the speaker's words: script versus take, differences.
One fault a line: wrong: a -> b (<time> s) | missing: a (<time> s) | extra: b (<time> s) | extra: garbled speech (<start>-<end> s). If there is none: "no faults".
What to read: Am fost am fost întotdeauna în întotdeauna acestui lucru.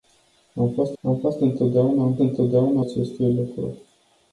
no faults